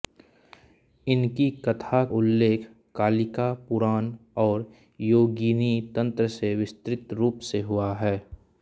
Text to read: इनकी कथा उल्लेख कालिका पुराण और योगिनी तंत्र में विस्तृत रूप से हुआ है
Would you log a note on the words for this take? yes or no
no